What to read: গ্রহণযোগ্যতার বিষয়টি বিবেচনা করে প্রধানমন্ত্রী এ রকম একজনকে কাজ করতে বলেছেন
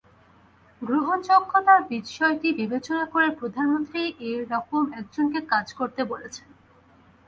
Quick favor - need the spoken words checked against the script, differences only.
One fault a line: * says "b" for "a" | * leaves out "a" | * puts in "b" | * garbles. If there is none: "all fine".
all fine